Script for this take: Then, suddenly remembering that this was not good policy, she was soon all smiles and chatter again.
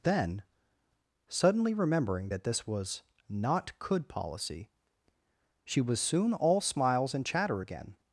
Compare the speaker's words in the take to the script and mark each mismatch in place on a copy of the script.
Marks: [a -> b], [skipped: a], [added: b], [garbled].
Then, suddenly remembering that this was not [good -> could] policy, she was soon all smiles and chatter again.